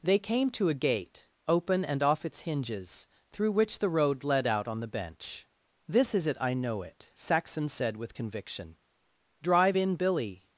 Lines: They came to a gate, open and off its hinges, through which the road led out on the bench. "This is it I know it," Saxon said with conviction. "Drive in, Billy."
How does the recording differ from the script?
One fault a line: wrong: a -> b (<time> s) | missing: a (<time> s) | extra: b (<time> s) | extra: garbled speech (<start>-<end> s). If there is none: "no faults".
no faults